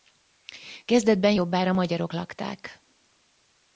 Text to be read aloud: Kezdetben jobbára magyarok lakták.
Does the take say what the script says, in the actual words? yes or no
yes